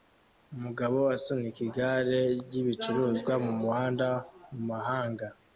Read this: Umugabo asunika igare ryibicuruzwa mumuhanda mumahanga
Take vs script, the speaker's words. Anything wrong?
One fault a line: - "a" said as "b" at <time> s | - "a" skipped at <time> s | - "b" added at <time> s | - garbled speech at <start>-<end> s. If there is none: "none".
none